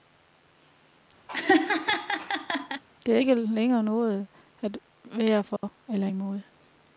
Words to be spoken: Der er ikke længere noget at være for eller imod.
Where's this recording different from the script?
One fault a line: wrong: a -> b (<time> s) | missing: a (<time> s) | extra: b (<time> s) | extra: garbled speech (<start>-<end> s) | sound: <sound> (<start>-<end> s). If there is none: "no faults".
sound: laugh (1.3-2.8 s)
sound: dropout (5.6-5.6 s)